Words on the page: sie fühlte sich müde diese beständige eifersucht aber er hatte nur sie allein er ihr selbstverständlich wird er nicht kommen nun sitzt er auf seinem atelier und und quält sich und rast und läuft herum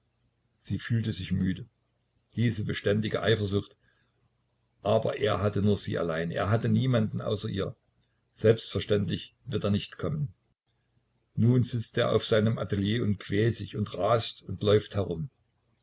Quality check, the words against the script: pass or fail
fail